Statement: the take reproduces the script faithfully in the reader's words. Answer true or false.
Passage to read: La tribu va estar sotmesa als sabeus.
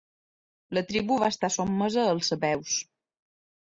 true